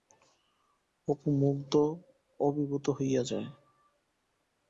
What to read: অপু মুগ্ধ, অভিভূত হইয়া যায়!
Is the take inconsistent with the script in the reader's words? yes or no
no